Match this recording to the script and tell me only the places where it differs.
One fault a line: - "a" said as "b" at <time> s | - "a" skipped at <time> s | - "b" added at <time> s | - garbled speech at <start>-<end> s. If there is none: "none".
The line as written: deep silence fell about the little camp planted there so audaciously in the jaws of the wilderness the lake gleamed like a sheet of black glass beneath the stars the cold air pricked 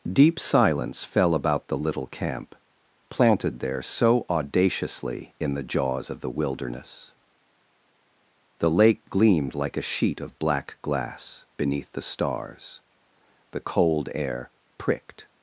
none